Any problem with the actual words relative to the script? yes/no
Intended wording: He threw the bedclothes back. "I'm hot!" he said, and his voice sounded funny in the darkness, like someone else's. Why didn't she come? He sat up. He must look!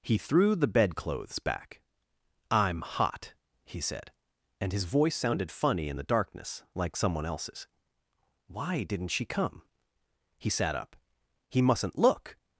yes